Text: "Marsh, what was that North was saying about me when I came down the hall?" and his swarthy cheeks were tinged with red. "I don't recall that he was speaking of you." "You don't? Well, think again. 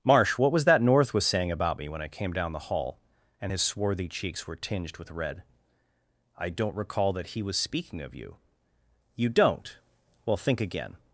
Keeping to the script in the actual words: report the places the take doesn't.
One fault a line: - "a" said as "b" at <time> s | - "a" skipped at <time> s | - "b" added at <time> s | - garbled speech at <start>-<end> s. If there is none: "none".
none